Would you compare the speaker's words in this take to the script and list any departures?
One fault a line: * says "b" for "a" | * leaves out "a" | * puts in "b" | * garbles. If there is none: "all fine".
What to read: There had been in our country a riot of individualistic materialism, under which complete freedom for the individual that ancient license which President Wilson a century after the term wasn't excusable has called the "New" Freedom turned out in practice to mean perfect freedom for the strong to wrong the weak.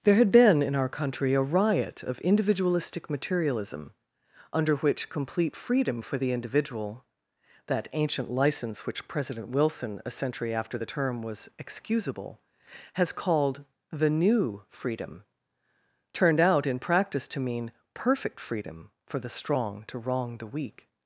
* says "was" for "wasn't"